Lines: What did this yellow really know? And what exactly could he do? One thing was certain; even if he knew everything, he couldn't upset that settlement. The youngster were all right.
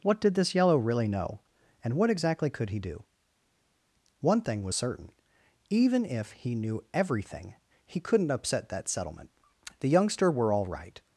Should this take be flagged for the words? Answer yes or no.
no